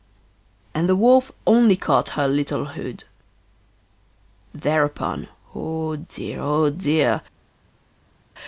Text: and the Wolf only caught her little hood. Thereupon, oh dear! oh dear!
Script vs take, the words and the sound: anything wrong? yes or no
no